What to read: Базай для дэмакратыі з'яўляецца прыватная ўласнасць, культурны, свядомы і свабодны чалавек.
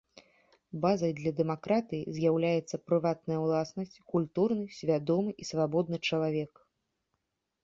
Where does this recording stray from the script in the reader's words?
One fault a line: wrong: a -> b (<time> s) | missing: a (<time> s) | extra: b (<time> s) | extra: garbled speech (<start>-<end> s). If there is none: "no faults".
no faults